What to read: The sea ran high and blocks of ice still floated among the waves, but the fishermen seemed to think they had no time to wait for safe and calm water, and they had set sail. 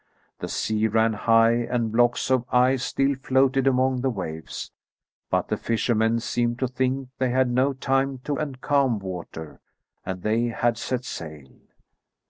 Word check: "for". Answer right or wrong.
wrong